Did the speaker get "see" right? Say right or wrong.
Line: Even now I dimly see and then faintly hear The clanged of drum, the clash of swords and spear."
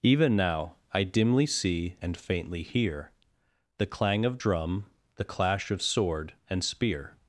right